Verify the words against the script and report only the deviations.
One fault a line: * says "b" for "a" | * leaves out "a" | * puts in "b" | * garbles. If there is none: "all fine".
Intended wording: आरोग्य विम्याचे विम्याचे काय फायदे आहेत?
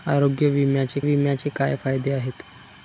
all fine